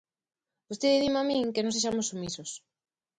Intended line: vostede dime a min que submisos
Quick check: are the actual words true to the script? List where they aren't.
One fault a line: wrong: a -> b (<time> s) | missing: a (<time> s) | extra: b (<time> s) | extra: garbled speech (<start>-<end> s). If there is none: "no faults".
extra: non sexamos (1.6 s)